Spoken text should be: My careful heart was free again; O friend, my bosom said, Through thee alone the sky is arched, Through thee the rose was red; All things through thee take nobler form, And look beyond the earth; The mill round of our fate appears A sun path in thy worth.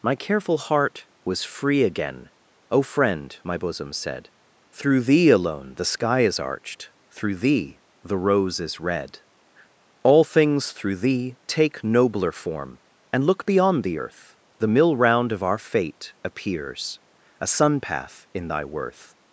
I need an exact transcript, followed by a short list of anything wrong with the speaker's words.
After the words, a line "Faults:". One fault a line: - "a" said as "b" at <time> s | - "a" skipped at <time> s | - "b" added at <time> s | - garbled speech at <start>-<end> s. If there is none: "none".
My careful heart was free again; O friend, my bosom said, Through thee alone the sky is arched, Through thee the rose is red; All things through thee take nobler form, And look beyond the earth; The mill round of our fate appears A sun path in thy worth.
Faults:
- "was" said as "is" at 8.6 s